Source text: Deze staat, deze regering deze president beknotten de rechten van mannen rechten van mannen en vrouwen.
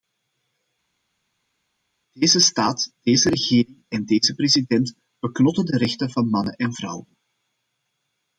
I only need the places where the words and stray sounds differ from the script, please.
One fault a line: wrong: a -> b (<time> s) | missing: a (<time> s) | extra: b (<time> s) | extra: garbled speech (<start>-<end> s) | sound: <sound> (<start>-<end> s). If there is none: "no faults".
extra: en (3.9 s)
missing: rechten van mannen (6.5 s)